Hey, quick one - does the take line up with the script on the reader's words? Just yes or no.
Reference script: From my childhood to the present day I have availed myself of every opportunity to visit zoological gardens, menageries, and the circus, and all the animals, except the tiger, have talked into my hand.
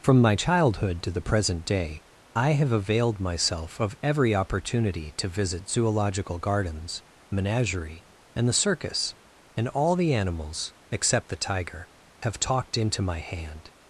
no